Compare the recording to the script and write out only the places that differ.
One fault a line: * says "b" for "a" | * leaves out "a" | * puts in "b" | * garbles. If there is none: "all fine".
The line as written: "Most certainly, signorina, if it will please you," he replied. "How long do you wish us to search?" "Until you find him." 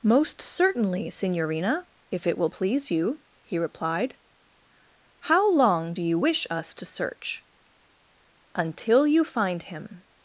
all fine